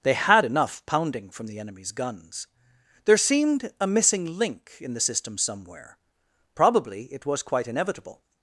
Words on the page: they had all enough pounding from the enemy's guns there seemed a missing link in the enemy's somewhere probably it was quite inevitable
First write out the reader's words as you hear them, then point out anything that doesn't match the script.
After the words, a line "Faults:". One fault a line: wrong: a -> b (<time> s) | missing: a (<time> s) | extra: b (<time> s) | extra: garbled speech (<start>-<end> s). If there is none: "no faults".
they had enough pounding from the enemy's guns there seemed a missing link in the system somewhere probably it was quite inevitable
Faults:
missing: all (0.5 s)
wrong: enemy's -> system (5.0 s)